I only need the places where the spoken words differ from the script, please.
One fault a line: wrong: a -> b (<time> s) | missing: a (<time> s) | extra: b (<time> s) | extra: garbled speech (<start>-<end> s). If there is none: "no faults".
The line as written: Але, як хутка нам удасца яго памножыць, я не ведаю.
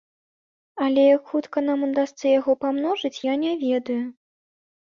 no faults